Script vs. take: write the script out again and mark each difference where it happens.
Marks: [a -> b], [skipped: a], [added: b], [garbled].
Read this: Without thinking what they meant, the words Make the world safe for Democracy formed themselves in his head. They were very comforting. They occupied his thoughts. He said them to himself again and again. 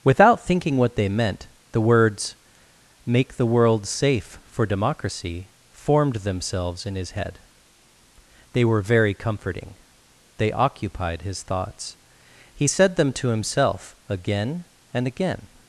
Without thinking what they meant, the words Make the world safe for Democracy formed themselves in his head. They were very comforting. They occupied his thoughts. He said them to himself again and again.